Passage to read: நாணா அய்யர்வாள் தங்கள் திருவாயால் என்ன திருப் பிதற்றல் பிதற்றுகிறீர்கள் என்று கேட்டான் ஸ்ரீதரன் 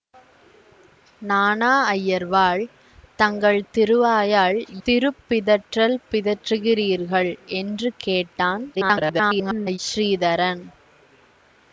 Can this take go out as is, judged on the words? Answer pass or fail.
fail